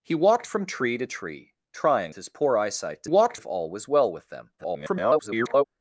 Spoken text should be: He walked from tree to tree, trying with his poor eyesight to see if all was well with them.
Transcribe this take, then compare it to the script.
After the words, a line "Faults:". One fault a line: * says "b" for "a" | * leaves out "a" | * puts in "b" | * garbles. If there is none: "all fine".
He walked from tree to tree, trying his poor eyesight to walked if all was well with them. [garbled]
Faults:
* leaves out "with"
* says "walked" for "see"
* garbles